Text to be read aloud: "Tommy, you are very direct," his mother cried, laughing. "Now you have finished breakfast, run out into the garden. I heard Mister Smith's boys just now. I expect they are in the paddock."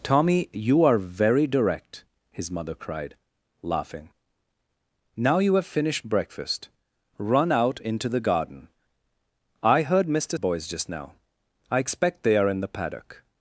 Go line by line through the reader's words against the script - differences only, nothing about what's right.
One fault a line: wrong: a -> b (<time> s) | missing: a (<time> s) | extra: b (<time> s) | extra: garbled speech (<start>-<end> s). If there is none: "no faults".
missing: Smith's (10.4 s)